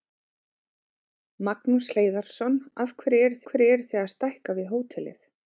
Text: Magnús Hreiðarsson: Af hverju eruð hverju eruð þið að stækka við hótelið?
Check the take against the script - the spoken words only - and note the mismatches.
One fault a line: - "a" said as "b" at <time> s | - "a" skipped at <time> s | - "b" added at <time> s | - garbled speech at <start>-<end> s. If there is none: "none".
none